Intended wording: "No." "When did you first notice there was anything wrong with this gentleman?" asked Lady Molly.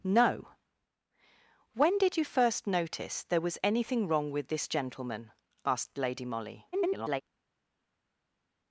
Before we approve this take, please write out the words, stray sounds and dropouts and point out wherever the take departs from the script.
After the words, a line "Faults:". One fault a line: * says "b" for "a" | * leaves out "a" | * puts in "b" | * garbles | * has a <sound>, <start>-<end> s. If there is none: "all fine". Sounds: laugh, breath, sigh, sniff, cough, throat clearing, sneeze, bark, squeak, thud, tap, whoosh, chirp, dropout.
"No." "When did you first notice there was anything wrong with this gentleman?" asked Lady Molly. [garbled]
Faults:
* garbles